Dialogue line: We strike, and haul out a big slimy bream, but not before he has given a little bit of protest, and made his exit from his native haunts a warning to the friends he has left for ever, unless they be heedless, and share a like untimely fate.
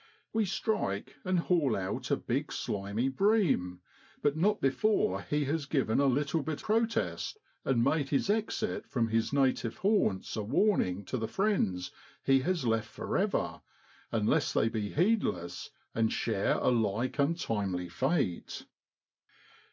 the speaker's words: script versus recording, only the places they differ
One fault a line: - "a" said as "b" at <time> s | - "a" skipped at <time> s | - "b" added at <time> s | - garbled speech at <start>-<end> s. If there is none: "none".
- "of" skipped at 6.6 s